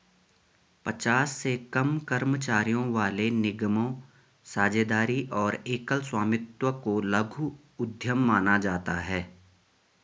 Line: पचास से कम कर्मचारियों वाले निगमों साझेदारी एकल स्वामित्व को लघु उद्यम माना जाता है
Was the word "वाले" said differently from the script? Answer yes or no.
no